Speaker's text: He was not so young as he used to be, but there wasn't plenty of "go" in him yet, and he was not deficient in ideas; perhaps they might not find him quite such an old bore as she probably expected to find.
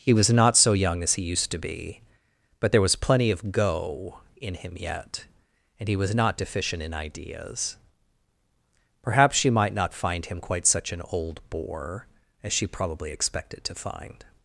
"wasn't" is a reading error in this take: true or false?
true